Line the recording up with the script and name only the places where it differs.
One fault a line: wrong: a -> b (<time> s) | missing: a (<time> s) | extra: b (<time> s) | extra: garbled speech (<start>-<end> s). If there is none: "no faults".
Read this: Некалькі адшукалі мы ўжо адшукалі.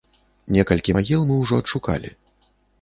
wrong: адшукалі -> магіл (1.0 s)